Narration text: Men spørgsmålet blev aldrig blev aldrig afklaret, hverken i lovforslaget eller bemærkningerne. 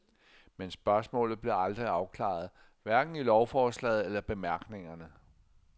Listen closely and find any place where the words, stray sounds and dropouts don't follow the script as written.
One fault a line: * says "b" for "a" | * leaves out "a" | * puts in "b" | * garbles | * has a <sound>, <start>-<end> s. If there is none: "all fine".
* leaves out "blev aldrig"